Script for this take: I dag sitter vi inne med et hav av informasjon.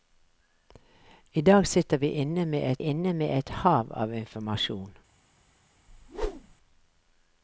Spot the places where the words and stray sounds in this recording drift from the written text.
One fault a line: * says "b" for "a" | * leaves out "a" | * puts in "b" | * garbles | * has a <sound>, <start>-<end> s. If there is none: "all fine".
* puts in "inne med et"
* has a whoosh, 5.9-6.6 s